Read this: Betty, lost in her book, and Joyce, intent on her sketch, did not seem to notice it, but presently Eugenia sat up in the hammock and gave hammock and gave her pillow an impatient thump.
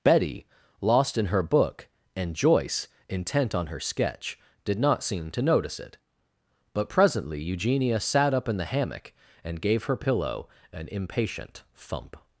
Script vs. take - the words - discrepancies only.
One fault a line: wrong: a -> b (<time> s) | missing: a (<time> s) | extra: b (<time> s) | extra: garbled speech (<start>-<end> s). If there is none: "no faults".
missing: hammock and gave (9.8 s)